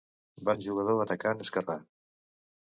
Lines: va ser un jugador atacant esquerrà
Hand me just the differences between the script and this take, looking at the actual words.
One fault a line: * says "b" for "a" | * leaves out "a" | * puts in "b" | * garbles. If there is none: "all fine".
* leaves out "ser"